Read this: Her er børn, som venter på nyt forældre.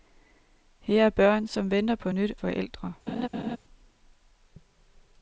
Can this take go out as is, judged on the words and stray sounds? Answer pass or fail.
fail